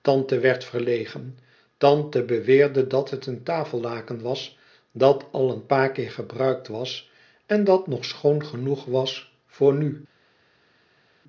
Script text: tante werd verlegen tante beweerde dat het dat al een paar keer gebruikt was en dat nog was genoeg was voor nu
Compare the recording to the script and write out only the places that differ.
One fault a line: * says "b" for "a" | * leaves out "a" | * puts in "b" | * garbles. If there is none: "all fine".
* puts in "een tafellaken was"
* says "schoon" for "was"